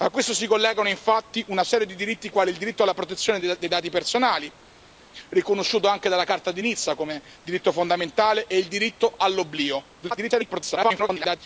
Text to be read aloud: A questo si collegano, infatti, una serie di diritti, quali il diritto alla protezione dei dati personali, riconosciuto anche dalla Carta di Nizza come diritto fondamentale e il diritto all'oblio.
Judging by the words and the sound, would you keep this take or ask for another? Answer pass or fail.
fail